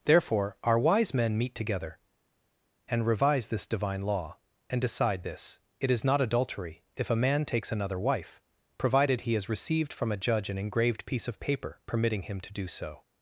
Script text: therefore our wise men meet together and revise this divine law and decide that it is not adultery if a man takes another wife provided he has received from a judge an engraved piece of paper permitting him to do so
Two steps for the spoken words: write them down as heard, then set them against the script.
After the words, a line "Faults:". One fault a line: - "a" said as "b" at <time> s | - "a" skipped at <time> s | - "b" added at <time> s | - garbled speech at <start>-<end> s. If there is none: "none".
therefore our wise men meet together and revise this divine law and decide this it is not adultery if a man takes another wife provided he has received from a judge an engraved piece of paper permitting him to do so
Faults:
- "that" said as "this" at 5.2 s